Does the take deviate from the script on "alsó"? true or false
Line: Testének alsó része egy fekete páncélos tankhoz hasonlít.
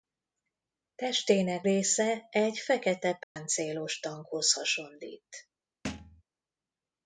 true